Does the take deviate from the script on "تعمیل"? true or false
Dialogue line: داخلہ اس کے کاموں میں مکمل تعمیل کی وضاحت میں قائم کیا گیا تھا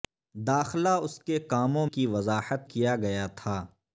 true